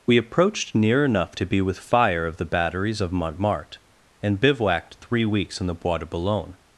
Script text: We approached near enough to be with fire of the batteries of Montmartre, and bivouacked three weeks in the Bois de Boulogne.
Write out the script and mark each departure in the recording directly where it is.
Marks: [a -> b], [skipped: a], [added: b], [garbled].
We approached near enough to be with fire of the batteries of Montmartre, and bivouacked three weeks in the Bois de Boulogne.